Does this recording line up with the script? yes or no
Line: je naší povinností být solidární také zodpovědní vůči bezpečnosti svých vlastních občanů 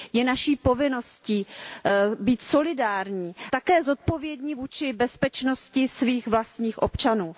yes